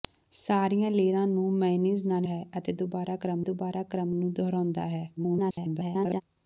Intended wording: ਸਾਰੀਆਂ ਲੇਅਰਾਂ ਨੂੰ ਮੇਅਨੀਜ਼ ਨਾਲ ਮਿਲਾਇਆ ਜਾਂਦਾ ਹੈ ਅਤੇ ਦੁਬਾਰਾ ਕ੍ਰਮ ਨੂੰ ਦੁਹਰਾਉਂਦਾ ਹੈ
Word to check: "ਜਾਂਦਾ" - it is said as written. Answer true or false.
false